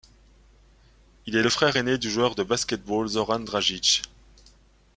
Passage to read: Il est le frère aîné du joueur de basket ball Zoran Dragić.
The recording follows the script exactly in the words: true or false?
true